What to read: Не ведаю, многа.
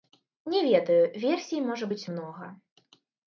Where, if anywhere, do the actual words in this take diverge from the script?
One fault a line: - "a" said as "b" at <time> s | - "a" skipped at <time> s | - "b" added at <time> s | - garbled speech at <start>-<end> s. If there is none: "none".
- "версій можа быць" added at 1.2 s